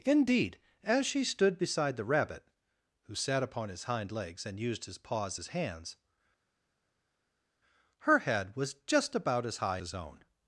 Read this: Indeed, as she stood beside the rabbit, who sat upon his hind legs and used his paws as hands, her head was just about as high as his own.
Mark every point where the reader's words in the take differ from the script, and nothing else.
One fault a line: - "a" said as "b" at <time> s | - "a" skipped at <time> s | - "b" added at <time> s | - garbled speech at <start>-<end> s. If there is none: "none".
- "as" skipped at 9.8 s